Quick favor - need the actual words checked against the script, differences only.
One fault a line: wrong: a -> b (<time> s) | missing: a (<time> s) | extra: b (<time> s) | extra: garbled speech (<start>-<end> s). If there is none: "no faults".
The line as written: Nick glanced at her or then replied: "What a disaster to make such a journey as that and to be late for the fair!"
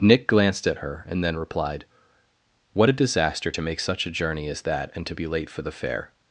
wrong: or -> and (1.1 s)